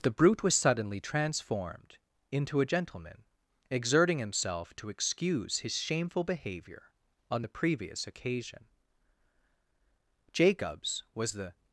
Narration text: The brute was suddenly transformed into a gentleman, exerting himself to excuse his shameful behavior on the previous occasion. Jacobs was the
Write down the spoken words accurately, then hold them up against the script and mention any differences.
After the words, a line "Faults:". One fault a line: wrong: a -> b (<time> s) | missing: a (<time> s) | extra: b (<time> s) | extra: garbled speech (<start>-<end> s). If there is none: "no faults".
The brute was suddenly transformed into a gentleman, exerting himself to excuse his shameful behavior on the previous occasion. Jacobs was the
Faults:
no faults